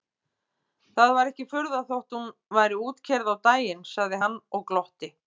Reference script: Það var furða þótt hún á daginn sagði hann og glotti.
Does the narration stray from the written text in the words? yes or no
yes